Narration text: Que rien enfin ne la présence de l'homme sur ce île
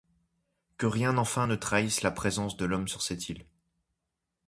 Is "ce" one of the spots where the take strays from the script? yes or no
yes